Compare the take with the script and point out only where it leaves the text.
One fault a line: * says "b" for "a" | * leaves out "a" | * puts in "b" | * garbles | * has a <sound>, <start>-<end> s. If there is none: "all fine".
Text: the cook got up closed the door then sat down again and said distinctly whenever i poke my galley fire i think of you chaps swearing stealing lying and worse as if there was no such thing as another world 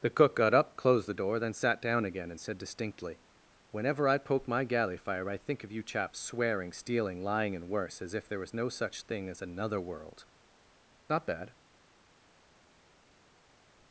* puts in "not bad"